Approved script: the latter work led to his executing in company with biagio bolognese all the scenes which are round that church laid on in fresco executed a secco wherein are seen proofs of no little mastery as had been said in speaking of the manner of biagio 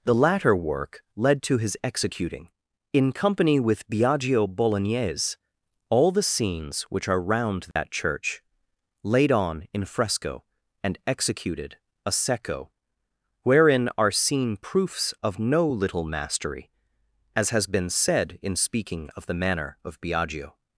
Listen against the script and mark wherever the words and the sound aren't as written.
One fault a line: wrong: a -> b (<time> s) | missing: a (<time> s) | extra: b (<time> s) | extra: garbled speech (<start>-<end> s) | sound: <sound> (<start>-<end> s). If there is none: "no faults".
sound: dropout (7.7-7.8 s)
extra: and (10.8 s)
wrong: had -> has (17.5 s)